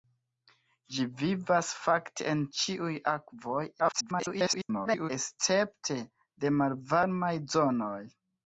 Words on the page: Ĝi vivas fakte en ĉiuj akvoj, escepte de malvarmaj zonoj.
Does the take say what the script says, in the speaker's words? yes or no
no